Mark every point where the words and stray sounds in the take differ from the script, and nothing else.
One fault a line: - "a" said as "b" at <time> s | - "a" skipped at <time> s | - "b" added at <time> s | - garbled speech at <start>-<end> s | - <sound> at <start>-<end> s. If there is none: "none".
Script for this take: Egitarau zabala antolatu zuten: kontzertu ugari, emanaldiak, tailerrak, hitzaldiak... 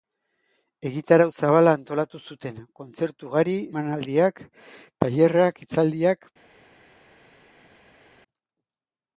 none